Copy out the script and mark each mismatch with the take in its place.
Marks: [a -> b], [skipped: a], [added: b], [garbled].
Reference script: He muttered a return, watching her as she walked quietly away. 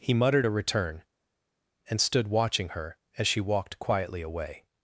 He muttered a return, [added: and stood] watching her as she walked quietly away.